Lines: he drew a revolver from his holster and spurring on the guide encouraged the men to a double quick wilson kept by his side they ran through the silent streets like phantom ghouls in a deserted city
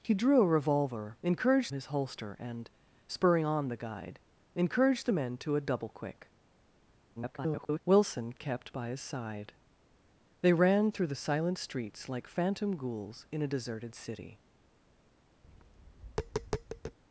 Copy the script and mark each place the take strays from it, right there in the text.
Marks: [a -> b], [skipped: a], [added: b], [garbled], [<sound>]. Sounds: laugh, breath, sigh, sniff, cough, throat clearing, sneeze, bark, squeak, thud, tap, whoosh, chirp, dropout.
he drew a revolver [from -> encouraged] his holster and spurring on the guide encouraged the men to a double quick [garbled] wilson kept by his side they ran through the silent streets like phantom ghouls in a deserted city [tap]